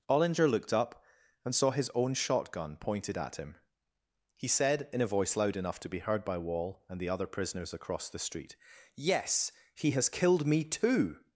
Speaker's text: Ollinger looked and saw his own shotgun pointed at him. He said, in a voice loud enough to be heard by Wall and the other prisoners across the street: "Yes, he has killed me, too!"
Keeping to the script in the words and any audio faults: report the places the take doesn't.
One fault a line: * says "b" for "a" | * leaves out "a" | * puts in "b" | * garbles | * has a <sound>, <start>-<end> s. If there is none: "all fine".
* puts in "up"